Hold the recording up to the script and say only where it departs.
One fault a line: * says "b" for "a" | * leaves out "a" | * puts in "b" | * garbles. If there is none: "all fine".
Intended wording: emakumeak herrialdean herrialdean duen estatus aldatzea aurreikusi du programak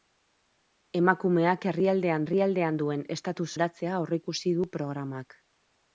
all fine